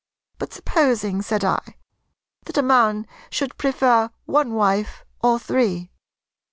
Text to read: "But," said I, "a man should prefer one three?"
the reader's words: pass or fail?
fail